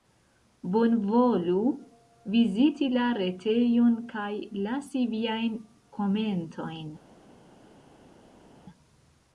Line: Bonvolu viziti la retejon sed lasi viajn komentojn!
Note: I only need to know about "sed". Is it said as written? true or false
false